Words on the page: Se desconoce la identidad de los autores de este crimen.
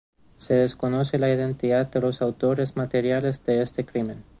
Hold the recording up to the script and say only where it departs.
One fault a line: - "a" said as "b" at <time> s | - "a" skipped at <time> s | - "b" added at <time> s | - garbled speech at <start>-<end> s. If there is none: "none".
- "materiales" added at 2.8 s